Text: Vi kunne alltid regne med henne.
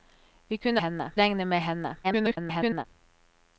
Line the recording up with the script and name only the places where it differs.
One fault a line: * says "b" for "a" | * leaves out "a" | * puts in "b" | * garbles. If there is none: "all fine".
* says "henne" for "alltid"
* garbles